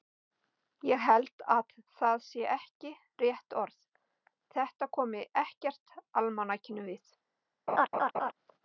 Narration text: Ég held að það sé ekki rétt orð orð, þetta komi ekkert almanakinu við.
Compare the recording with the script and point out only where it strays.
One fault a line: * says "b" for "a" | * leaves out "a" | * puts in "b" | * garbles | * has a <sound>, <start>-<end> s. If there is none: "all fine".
* leaves out "orð"
* has a laugh, 7.7-8.3 s